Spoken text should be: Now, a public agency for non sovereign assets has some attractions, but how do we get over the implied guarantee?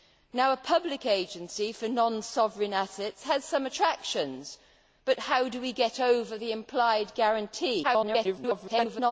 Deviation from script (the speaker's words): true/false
true